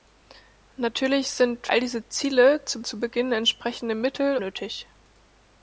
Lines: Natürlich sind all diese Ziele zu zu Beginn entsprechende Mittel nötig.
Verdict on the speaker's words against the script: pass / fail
pass